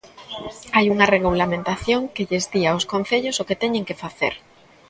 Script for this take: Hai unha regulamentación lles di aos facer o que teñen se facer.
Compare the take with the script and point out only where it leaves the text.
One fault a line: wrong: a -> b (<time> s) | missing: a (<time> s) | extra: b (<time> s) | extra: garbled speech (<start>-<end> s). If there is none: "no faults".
extra: que (2.1 s)
wrong: facer -> concellos (2.9 s)
wrong: se -> que (3.9 s)